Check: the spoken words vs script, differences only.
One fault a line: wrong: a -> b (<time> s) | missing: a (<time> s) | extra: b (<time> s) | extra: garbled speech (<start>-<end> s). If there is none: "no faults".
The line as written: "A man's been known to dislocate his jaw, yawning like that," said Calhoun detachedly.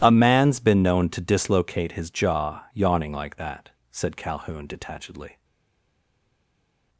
no faults